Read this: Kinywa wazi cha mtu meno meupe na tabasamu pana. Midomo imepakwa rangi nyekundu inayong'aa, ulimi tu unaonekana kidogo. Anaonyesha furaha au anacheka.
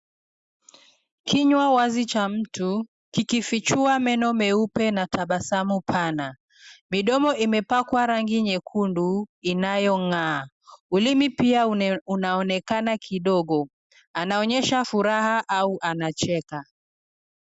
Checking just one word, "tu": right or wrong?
wrong